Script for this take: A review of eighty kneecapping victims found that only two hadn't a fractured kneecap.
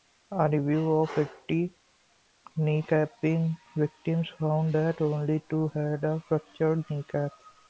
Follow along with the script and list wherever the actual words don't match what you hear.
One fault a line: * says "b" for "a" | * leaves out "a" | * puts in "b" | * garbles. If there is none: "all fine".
* says "had" for "hadn't"